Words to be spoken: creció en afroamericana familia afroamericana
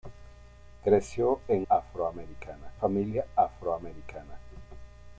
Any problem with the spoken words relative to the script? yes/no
no